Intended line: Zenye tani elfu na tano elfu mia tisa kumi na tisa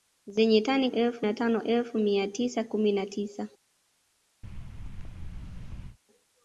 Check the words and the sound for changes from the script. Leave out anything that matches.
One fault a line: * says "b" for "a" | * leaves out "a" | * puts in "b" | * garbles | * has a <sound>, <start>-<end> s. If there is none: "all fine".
* has a thud, 4.4-6.0 s